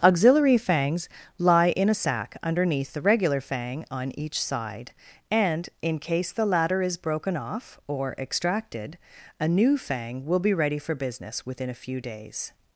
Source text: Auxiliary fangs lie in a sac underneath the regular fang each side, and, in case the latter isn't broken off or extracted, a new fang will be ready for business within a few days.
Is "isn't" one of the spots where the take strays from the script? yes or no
yes